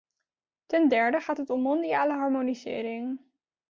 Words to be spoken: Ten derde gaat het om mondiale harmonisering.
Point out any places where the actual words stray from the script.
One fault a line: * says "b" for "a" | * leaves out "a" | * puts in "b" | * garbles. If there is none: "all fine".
all fine